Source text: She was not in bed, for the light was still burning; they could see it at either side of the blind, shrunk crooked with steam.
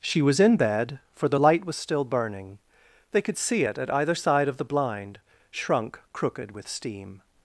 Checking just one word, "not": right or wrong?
wrong